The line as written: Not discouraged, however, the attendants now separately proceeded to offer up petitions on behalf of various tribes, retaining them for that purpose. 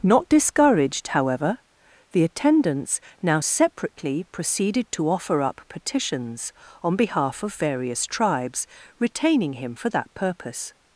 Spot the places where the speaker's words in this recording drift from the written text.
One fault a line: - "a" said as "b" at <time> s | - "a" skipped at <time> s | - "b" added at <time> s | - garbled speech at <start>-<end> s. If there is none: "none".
- "them" said as "him" at 9.5 s